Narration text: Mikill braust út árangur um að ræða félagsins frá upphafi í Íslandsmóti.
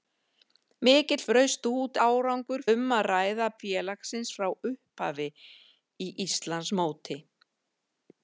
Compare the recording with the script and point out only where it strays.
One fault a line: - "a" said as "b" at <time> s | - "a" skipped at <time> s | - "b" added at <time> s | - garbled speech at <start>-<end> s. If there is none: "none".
none